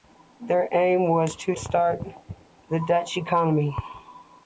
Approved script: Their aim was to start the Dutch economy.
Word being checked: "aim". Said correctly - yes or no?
yes